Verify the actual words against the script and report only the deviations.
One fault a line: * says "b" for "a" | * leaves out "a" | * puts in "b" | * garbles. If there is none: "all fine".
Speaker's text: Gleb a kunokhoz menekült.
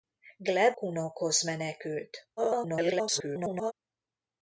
* leaves out "a"
* garbles